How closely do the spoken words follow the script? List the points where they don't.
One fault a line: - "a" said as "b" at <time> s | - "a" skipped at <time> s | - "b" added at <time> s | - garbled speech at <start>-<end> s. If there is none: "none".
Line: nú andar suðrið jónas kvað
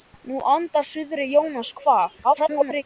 - garbled speech at 2.2-2.8 s